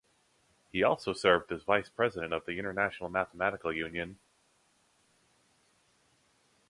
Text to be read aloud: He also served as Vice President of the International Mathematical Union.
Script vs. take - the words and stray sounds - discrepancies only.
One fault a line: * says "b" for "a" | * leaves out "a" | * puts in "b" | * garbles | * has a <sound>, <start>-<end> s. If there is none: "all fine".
all fine